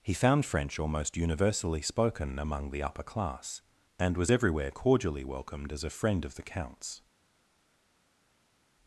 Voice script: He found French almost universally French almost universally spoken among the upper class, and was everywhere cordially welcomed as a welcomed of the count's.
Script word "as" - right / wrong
right